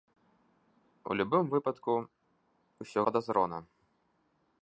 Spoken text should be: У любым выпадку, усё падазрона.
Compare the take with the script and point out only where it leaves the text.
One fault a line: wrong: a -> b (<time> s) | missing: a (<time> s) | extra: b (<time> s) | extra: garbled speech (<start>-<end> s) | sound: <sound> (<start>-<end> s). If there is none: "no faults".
no faults